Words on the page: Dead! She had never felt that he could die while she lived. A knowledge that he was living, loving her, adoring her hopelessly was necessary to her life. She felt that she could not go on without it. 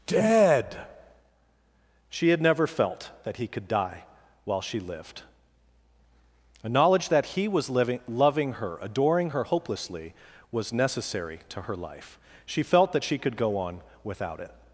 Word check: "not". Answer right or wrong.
wrong